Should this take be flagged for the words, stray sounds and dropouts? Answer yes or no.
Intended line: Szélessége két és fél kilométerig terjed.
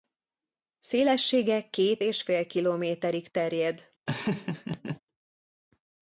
yes